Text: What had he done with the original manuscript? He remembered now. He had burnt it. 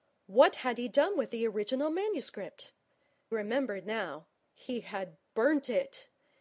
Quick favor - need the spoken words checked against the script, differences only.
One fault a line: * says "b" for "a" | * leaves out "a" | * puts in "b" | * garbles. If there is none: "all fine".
* leaves out "He"